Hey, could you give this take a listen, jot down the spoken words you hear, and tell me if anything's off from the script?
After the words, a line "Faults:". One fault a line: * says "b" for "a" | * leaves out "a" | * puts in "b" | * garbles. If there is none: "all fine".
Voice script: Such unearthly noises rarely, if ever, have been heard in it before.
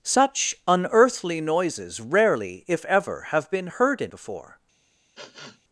Such unearthly noises rarely, if ever, have been heard in before.
Faults:
* leaves out "it"